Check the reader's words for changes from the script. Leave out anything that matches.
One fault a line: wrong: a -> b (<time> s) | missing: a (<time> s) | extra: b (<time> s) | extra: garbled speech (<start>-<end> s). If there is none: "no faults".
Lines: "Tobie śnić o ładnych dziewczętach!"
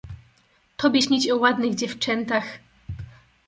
no faults